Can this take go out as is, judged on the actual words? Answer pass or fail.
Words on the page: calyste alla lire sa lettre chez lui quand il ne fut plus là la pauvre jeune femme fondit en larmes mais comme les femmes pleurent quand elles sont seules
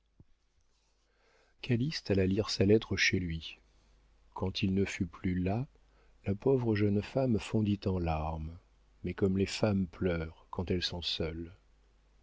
pass